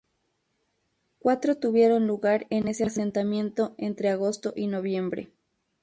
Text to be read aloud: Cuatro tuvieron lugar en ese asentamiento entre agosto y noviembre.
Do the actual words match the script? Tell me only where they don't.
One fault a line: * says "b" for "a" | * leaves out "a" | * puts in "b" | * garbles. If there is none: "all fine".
all fine